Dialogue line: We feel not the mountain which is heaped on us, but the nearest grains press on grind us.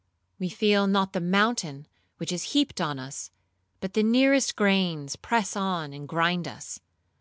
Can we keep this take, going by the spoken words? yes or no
no